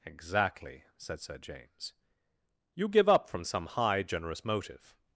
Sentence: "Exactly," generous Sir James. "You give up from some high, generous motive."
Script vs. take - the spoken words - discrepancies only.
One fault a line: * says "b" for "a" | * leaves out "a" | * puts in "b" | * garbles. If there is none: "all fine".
* says "said" for "generous"